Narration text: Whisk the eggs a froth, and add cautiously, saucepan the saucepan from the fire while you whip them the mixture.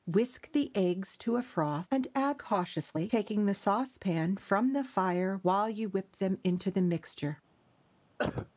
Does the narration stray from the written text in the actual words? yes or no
yes